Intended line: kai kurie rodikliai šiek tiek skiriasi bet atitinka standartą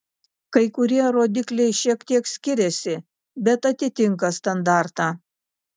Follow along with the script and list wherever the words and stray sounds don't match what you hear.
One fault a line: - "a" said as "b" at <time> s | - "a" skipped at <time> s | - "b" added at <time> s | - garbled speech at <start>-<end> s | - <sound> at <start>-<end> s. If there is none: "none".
none